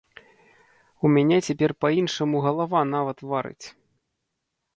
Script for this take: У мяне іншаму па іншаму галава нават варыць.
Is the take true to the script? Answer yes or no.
no